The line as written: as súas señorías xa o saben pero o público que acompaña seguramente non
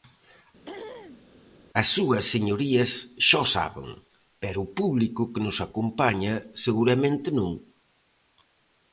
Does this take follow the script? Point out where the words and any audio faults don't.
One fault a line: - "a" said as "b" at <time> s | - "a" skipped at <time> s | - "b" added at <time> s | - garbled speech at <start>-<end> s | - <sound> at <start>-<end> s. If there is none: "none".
- throat clearing at 0.7-1.2 s
- "nos" added at 5.5 s